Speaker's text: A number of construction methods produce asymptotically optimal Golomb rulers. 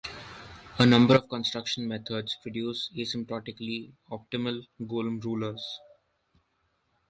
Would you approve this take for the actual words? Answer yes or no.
yes